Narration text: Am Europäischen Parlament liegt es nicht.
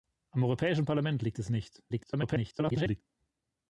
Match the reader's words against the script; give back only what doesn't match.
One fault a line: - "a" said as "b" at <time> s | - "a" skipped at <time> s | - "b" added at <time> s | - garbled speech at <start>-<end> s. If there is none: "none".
- garbled speech at 1.9-3.0 s